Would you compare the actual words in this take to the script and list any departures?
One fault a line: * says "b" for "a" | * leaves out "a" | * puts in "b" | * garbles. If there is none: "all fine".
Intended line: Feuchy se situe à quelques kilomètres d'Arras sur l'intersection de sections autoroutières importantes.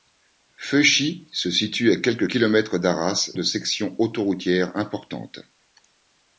* leaves out "sur l'intersection"